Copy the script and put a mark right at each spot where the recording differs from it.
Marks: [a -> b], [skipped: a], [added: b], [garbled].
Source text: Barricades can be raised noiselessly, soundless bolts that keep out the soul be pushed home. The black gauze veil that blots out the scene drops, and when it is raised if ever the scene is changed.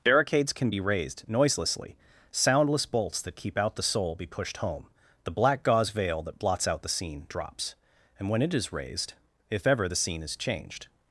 Barricades can be raised noiselessly, soundless bolts that keep out the soul be pushed home. The black gauze veil that blots out the scene drops, and when it is raised if ever the scene is changed.